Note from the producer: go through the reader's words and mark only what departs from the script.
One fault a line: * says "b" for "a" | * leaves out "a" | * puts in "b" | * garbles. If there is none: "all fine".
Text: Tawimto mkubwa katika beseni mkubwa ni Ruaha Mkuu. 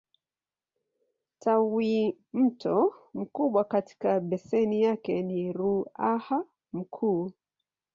* says "yake" for "mkubwa"